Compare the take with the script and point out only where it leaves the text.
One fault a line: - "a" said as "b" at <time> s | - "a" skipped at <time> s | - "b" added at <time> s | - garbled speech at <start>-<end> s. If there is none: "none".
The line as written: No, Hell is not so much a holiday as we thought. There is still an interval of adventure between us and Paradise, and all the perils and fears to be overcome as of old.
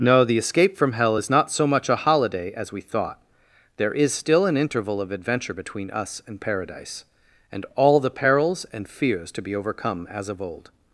- "the escape from" added at 0.2 s